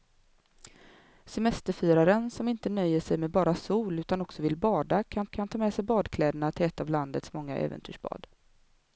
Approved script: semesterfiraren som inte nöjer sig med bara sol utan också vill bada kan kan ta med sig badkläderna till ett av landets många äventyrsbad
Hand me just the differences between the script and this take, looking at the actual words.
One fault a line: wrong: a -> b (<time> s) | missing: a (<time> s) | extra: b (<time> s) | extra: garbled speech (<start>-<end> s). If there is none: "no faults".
no faults